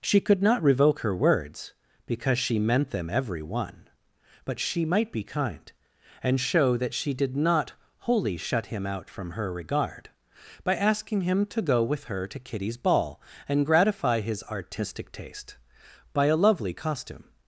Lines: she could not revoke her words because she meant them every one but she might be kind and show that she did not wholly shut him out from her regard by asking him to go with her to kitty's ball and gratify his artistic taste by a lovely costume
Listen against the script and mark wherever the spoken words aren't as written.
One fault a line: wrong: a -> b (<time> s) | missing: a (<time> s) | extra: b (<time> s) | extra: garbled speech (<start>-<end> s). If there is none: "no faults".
no faults